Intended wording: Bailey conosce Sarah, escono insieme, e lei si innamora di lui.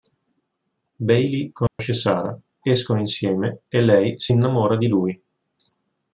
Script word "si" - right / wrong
right